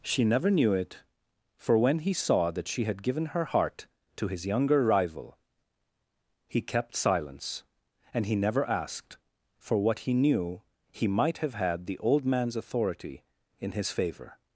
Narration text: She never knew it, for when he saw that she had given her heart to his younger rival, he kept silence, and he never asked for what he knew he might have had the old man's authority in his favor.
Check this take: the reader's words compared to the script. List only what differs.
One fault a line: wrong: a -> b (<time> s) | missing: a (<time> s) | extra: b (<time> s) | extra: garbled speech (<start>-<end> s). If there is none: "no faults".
no faults